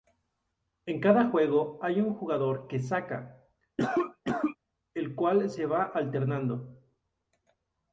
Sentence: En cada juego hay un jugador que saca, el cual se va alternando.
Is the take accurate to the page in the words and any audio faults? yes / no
no